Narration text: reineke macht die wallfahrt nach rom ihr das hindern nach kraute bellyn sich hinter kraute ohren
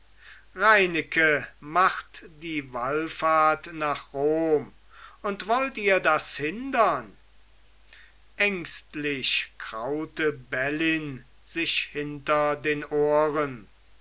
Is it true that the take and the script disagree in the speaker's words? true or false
true